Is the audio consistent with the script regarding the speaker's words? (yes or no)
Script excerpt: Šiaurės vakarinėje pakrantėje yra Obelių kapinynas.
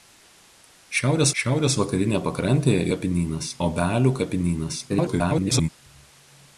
no